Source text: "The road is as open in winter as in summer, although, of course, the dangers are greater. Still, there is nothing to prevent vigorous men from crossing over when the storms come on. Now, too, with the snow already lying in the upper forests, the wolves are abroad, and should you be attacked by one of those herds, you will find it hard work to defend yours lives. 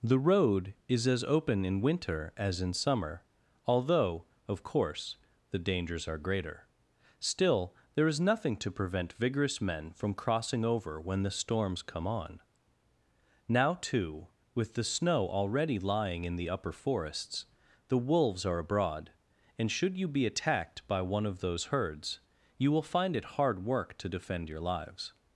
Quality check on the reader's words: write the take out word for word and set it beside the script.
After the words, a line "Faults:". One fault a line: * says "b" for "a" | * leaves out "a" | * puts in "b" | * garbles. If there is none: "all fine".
"The road is as open in winter as in summer, although, of course, the dangers are greater. Still, there is nothing to prevent vigorous men from crossing over when the storms come on. Now, too, with the snow already lying in the upper forests, the wolves are abroad, and should you be attacked by one of those herds, you will find it hard work to defend your lives.
Faults:
* says "your" for "yours"